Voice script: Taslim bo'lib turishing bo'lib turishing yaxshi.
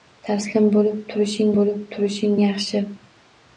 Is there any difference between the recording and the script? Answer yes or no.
no